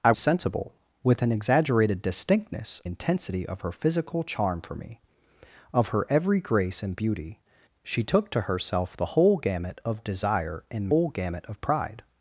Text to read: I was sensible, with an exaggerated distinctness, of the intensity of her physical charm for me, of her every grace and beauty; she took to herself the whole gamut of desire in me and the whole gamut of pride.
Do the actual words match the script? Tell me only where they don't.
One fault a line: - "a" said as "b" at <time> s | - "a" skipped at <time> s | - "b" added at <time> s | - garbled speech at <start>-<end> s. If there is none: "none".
- "was" skipped at 0.1 s
- "of the" skipped at 2.8 s
- "me and the" skipped at 10.9 s